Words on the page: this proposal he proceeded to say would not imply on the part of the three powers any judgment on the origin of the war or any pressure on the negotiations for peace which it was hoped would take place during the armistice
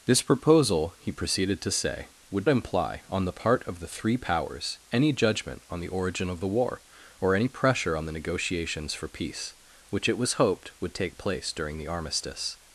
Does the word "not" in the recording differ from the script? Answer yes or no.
yes